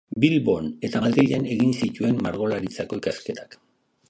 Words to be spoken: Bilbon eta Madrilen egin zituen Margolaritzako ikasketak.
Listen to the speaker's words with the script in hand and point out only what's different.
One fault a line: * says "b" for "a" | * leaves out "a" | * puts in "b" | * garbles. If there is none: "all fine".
all fine